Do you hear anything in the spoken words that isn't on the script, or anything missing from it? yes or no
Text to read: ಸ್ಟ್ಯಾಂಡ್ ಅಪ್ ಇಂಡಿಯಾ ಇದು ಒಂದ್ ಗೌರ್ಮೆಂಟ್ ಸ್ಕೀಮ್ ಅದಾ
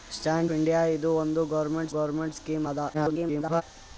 yes